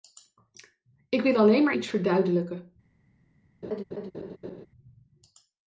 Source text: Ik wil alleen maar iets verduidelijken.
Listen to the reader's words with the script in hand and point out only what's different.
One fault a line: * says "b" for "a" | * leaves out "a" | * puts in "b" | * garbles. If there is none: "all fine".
all fine